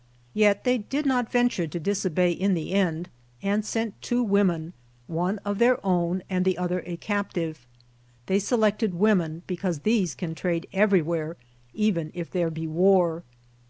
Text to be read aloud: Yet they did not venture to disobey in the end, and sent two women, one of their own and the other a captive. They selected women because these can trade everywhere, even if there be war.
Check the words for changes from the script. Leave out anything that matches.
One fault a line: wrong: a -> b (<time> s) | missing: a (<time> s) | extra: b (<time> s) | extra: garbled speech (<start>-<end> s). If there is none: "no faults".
no faults